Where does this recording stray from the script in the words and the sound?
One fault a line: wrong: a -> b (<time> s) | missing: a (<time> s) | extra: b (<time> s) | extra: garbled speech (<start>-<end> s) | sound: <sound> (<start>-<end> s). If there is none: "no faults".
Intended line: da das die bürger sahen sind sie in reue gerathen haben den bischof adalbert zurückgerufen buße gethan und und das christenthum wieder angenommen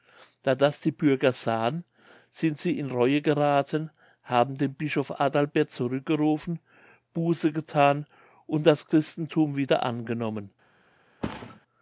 missing: und (8.7 s)
sound: thud (11.2-11.6 s)